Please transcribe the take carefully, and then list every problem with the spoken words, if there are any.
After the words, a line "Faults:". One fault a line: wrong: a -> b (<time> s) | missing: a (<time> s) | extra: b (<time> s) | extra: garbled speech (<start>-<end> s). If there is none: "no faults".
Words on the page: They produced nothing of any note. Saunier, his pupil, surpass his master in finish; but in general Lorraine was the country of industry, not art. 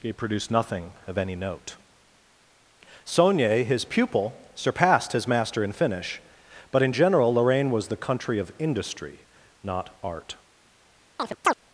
He produced nothing of any note. Saunier, his pupil, surpassed his master in finish; but in general Lorraine was the country of industry, not art.
Faults:
wrong: They -> He (0.0 s)
wrong: surpass -> surpassed (4.5 s)